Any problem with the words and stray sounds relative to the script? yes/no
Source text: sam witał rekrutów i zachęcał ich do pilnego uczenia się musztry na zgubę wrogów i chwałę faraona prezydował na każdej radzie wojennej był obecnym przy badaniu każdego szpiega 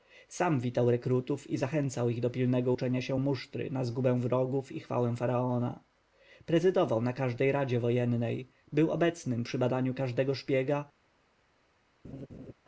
yes